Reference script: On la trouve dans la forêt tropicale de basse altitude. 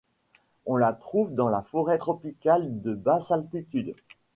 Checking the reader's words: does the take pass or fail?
pass